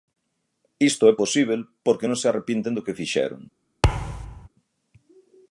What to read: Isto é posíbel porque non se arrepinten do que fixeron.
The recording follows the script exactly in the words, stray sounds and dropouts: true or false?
false